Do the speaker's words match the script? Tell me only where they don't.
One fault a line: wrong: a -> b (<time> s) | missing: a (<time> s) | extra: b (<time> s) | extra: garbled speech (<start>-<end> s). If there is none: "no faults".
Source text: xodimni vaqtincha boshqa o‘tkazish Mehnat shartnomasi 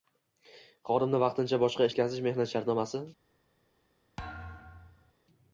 no faults